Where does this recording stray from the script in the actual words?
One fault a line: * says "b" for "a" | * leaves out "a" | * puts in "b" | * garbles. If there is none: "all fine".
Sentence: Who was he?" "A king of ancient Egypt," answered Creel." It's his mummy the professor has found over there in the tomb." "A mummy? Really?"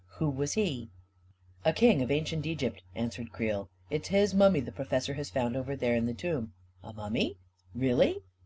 all fine